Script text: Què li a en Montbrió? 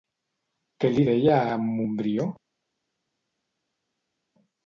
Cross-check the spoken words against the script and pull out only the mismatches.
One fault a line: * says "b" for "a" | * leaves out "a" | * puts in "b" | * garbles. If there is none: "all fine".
* puts in "deia"